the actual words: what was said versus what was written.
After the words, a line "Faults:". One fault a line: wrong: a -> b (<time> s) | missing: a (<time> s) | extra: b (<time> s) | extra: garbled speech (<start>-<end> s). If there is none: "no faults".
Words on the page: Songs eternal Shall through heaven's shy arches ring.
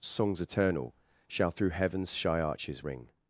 Songs eternal Shall through heaven's shy arches ring.
Faults:
no faults